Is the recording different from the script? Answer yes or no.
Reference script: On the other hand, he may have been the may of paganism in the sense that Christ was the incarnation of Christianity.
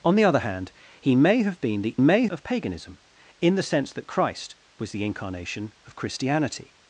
no